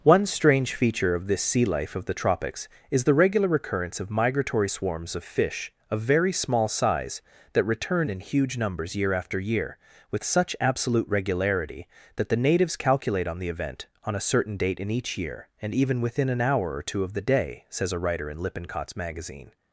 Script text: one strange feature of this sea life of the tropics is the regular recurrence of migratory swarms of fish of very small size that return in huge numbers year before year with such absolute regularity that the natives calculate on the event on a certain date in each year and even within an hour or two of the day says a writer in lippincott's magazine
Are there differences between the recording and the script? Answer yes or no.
yes